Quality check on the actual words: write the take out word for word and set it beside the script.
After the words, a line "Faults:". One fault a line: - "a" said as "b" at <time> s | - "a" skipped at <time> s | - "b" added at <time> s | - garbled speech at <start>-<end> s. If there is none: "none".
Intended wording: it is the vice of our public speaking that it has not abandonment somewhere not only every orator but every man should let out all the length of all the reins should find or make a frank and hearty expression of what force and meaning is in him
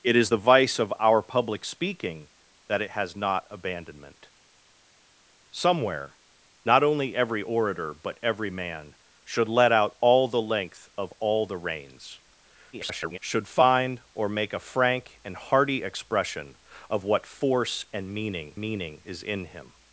it is the vice of our public speaking that it has not abandonment somewhere not only every orator but every man should let out all the length of all the reins [garbled] should find or make a frank and hearty expression of what force and meaning meaning is in him
Faults:
- garbled speech at 12.7-13.2 s
- "meaning" added at 18.6 s